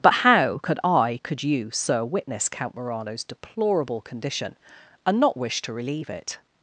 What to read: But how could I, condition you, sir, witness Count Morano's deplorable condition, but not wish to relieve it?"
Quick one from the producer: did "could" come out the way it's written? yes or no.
yes